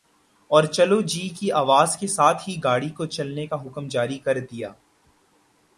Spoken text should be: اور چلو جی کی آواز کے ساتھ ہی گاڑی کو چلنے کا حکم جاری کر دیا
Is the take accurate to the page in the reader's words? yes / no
yes